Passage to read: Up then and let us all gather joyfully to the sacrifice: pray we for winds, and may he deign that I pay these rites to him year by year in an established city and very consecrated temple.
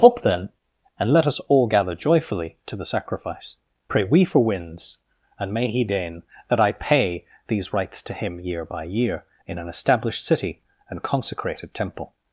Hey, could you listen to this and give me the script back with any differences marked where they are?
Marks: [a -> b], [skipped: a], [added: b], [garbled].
Up then and let us all gather joyfully to the sacrifice: pray we for winds, and may he deign that I pay these rites to him year by year in an established city and [skipped: very] consecrated temple.